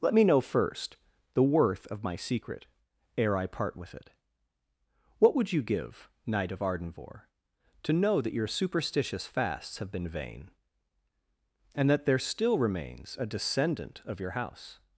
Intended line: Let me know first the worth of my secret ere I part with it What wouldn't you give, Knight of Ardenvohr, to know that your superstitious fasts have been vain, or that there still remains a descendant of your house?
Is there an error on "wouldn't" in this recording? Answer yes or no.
yes